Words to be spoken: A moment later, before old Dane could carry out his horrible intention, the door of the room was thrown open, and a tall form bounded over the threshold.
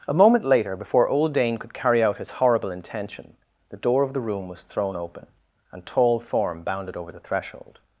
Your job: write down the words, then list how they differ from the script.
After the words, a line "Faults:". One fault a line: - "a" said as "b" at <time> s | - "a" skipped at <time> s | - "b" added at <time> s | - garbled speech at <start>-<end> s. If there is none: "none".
A moment later, before old Dane could carry out his horrible intention, the door of the room was thrown open, and tall form bounded over the threshold.
Faults:
- "a" skipped at 5.8 s